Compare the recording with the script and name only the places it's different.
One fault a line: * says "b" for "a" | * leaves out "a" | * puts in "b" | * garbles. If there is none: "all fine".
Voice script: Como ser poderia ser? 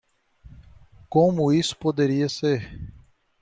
* says "isso" for "ser"